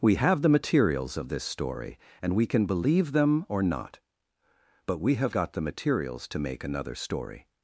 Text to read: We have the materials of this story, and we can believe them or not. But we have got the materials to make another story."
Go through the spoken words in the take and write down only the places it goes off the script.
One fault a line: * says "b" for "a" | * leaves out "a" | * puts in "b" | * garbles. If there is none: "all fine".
all fine